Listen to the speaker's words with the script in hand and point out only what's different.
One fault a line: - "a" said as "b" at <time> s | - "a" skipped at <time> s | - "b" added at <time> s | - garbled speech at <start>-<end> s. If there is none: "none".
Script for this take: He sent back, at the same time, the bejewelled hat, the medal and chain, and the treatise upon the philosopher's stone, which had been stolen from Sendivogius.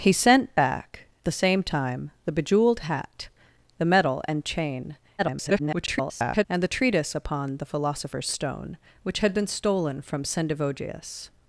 - "at" skipped at 1.1 s
- garbled speech at 5.2-6.4 s